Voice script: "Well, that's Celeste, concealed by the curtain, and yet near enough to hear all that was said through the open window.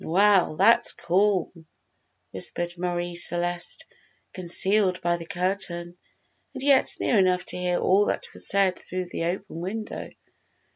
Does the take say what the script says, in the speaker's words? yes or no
no